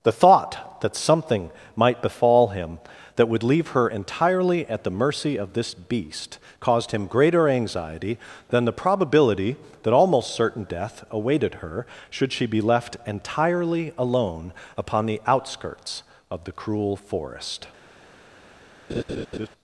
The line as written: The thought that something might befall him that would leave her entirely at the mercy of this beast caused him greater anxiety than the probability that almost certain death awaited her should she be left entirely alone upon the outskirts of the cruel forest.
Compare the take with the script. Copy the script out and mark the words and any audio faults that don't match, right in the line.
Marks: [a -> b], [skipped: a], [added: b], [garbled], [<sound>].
The thought that something might befall him that would leave her entirely at the mercy of this beast caused him greater anxiety than the probability that almost certain death awaited her should she be left entirely alone upon the outskirts of the cruel forest. [laugh]